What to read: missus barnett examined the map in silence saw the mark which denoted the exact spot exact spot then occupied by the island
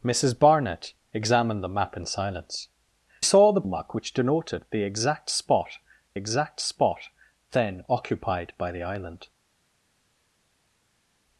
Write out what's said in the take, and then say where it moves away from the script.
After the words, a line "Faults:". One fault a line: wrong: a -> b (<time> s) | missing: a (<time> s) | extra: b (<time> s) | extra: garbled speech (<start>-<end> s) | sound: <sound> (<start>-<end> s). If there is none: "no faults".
missus barnett examined the map in silence saw the mark which denoted the exact spot exact spot then occupied by the island
Faults:
no faults